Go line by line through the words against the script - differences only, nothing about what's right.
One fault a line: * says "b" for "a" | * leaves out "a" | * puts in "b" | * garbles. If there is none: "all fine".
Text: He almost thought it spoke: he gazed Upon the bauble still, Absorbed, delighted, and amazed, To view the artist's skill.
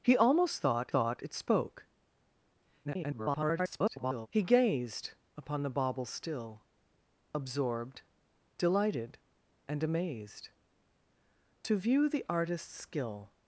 * puts in "thought"
* garbles